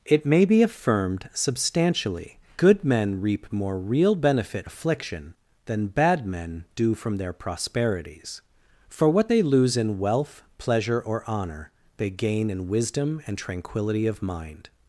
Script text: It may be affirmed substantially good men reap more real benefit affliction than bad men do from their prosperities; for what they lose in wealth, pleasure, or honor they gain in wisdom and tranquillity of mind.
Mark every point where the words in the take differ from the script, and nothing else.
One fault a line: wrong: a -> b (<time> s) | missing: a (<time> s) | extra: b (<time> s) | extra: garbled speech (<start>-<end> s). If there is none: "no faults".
no faults